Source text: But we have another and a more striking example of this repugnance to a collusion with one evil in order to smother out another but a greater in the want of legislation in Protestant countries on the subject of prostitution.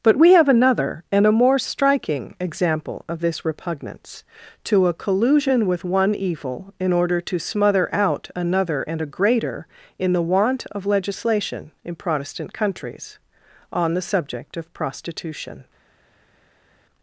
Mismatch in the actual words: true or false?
true